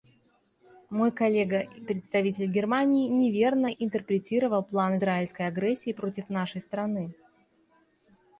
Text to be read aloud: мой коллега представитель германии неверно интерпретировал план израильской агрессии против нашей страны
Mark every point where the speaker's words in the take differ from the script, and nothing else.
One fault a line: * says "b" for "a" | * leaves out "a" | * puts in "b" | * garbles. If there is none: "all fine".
all fine